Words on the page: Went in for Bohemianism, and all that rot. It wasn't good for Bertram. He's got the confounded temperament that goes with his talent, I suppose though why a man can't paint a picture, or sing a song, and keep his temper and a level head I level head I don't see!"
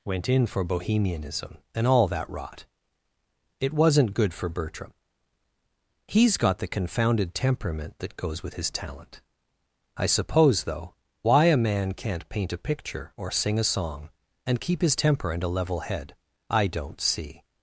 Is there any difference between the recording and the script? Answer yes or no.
yes